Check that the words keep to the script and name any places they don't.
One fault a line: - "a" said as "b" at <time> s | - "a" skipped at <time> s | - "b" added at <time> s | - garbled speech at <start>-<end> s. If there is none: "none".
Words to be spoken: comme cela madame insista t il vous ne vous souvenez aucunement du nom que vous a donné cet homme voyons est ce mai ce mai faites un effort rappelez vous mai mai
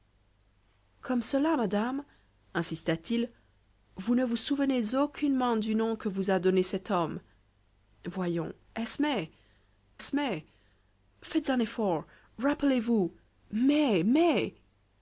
none